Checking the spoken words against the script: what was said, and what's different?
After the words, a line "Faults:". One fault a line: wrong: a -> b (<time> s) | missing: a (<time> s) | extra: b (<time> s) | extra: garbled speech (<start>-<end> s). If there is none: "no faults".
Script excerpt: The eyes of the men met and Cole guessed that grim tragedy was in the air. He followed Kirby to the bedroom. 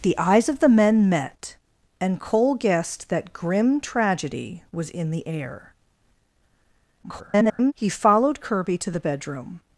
The eyes of the men met and Cole guessed that grim tragedy was in the air. [garbled] He followed Kirby to the bedroom.
Faults:
extra: garbled speech (7.0-7.7 s)